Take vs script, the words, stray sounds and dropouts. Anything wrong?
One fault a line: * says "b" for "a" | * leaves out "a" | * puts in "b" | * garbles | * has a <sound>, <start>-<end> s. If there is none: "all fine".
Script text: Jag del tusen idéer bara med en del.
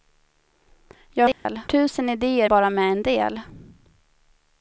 * has a dropout, 1.3-1.5 s